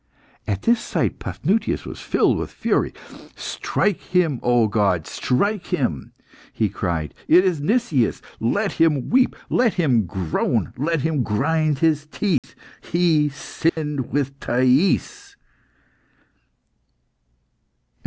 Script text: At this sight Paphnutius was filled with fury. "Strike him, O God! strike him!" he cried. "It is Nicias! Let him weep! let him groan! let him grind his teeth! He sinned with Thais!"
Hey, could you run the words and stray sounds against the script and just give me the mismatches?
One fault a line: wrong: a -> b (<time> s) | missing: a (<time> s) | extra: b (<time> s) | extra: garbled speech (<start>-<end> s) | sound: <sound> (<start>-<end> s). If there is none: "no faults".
sound: dropout (12.4-12.4 s)
sound: dropout (13.7-13.8 s)